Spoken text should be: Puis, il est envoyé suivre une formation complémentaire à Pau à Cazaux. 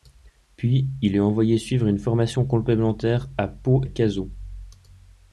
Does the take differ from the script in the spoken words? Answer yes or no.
no